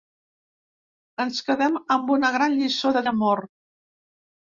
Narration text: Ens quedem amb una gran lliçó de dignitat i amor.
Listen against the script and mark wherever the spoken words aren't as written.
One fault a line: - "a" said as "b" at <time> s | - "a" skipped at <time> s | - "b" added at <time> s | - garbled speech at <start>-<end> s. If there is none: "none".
- "dignitat" skipped at 3.0 s